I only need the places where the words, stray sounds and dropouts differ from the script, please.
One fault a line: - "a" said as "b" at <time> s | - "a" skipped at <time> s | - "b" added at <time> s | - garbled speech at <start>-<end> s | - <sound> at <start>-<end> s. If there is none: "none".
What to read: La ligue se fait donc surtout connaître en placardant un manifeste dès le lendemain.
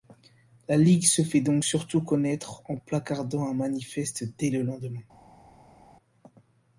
none